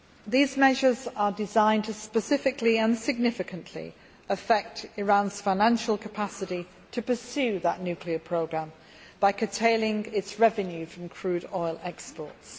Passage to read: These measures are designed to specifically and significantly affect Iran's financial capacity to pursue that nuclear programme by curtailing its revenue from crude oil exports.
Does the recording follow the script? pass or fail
pass